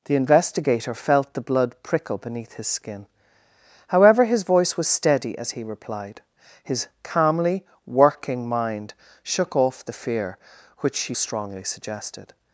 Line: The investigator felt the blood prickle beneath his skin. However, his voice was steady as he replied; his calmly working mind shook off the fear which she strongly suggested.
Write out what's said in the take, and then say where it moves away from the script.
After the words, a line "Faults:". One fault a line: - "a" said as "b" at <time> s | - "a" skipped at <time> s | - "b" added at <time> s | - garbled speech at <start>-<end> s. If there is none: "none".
The investigator felt the blood prickle beneath his skin. However, his voice was steady as he replied; his calmly working mind shook off the fear which she strongly suggested.
Faults:
none